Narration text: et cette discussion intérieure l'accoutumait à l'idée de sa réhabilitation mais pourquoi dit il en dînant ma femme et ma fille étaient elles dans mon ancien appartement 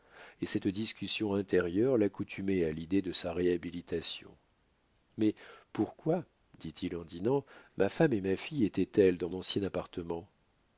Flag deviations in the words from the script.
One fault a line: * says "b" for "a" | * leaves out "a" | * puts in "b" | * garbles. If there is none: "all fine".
* leaves out "mon"